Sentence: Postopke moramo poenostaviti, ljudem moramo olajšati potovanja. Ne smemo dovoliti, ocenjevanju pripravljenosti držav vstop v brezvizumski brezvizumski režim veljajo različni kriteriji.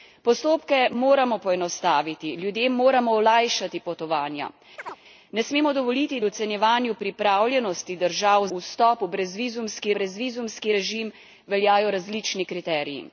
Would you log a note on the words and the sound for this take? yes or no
yes